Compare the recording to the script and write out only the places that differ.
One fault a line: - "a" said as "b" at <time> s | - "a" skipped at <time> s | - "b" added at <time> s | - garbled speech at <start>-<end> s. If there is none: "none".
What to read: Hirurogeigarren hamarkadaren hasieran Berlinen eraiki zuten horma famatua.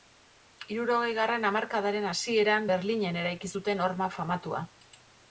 none